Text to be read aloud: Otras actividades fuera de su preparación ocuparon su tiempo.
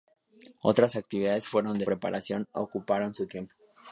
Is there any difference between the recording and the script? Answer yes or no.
yes